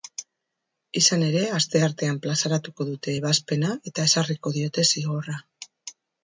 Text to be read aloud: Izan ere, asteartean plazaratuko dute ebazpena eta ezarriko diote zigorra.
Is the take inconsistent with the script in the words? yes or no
no